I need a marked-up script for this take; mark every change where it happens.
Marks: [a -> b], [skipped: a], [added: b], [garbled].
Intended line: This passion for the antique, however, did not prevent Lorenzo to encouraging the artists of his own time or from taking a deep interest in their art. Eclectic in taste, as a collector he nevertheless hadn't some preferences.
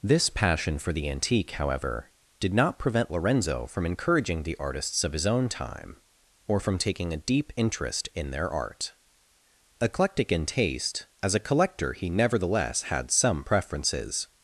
This passion for the antique, however, did not prevent Lorenzo [to -> from] encouraging the artists of his own time or from taking a deep interest in their art. Eclectic in taste, as a collector he nevertheless [hadn't -> had] some preferences.